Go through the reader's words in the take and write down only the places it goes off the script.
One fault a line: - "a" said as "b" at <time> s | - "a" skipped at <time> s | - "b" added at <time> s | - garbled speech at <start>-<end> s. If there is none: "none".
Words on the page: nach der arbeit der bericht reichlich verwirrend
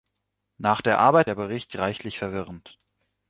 none